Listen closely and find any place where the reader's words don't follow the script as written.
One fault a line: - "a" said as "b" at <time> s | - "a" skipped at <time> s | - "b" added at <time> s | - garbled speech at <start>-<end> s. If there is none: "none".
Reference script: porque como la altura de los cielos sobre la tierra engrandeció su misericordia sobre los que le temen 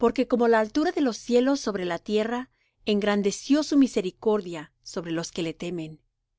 none